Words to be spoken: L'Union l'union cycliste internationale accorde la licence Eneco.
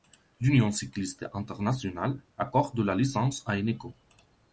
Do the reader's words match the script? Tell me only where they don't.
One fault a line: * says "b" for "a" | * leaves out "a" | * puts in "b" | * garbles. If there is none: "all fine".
* leaves out "l'union"
* puts in "à"